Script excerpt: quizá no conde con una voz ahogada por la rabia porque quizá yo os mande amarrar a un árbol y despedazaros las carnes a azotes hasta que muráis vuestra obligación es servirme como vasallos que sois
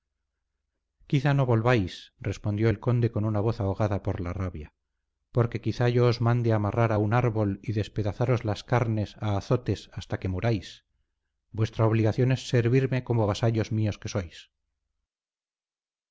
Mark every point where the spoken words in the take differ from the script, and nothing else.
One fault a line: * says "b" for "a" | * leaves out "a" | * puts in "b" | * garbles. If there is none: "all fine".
* puts in "volváis respondió el"
* puts in "míos"